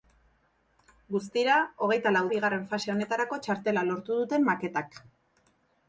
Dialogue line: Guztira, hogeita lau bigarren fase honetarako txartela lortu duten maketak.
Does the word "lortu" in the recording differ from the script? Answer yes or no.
no